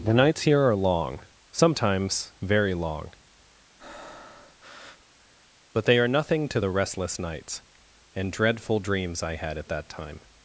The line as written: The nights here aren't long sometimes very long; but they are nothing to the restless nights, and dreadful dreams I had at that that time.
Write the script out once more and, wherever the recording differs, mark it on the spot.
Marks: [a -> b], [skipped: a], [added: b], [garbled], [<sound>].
The nights here [aren't -> are] long sometimes very long; [breath] but they are nothing to the restless nights, and dreadful dreams I had at that [skipped: that] time.